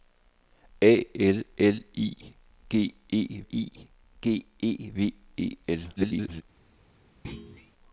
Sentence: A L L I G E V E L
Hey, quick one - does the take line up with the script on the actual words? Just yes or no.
no